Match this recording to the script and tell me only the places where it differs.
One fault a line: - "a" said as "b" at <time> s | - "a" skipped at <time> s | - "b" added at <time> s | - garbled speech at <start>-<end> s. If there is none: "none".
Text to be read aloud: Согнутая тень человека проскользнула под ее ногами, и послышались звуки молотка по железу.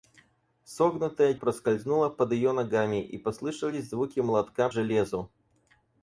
- "тень человека" skipped at 1.4 s
- "по" skipped at 4.7 s